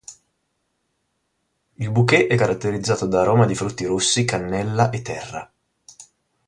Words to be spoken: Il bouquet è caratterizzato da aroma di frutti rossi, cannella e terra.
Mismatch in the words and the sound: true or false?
false